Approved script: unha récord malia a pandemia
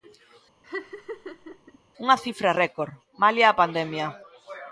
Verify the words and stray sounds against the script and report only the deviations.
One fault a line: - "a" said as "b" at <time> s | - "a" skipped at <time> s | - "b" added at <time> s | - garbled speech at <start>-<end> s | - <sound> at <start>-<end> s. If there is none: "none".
- laugh at 0.6-1.8 s
- "cifra" added at 2.2 s